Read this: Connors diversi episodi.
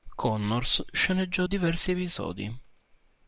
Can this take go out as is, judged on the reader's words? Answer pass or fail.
fail